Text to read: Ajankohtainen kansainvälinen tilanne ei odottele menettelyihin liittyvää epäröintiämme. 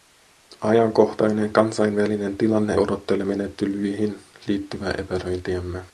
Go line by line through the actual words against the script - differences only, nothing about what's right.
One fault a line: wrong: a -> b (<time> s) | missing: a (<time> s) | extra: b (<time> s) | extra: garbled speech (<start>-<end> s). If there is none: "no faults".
missing: ei (2.8 s)